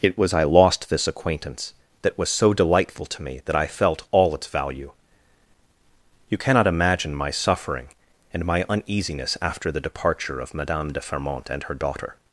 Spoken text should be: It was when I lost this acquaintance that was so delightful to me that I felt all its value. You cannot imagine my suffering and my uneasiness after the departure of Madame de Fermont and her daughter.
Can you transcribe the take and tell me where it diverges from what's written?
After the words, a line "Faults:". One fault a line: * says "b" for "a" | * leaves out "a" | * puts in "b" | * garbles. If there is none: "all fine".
It was I lost this acquaintance that was so delightful to me that I felt all its value. You cannot imagine my suffering and my uneasiness after the departure of Madame de Fermont and her daughter.
Faults:
* leaves out "when"